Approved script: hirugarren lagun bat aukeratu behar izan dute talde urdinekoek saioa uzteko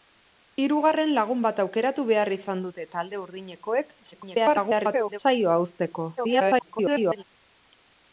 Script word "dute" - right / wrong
right